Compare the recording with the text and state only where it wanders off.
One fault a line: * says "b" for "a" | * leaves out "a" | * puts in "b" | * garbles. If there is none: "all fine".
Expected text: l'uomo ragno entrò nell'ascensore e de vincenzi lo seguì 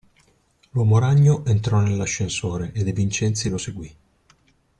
all fine